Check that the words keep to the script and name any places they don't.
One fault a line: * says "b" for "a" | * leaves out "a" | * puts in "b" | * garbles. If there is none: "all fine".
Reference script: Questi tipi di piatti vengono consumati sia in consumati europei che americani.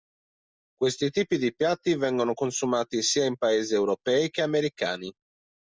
* says "paesi" for "consumati"